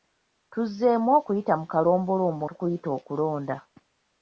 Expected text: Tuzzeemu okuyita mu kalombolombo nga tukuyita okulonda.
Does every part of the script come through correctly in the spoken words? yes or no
no